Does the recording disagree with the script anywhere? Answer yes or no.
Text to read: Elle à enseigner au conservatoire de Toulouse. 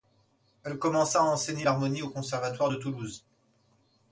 yes